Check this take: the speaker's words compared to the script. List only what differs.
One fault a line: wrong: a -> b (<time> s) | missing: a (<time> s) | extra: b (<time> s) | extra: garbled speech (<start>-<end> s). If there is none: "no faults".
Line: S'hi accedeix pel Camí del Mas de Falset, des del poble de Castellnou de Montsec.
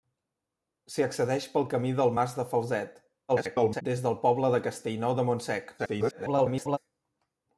extra: garbled speech (3.3-3.8 s)
extra: garbled speech (5.8-6.8 s)